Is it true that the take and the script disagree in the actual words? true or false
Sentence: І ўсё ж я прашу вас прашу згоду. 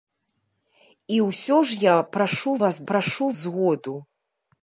false